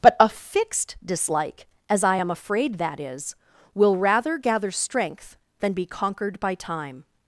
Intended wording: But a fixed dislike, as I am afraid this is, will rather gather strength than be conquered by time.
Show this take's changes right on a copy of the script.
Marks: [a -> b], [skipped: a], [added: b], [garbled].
But a fixed dislike, as I am afraid [this -> that] is, will rather gather strength than be conquered by time.